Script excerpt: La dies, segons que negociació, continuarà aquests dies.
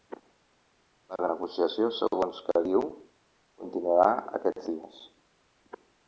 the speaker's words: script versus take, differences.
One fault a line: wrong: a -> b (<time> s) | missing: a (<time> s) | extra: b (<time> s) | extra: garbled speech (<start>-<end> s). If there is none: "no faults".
wrong: dies -> negociació (1.3 s)
wrong: negociació -> diu (2.7 s)